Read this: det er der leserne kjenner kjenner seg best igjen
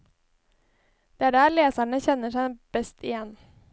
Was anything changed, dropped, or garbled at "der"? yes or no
no